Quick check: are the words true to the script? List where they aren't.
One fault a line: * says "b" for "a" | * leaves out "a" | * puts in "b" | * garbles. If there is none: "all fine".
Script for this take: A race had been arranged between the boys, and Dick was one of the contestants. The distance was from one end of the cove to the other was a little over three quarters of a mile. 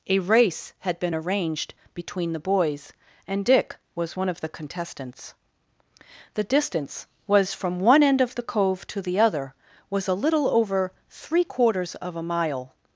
all fine